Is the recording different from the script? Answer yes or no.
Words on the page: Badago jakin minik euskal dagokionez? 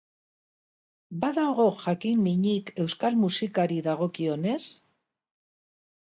yes